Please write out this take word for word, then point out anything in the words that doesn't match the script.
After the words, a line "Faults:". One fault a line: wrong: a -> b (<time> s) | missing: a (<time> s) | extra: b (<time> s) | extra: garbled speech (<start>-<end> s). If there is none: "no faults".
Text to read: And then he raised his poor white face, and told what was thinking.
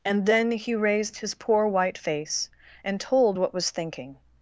And then he raised his poor white face, and told what was thinking.
Faults:
no faults